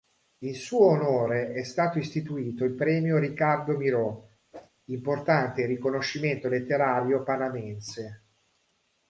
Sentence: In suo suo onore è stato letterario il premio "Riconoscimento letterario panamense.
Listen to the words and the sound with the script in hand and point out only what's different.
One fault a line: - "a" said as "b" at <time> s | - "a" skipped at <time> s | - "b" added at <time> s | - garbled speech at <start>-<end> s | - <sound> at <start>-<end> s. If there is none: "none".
- "suo" skipped at 0.9 s
- "letterario" said as "istituito" at 2.0 s
- "Ricardo Miró importante" added at 3.2 s
- whoosh at 4.5-4.7 s